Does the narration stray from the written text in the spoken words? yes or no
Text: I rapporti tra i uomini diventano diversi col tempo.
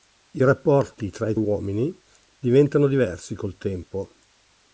no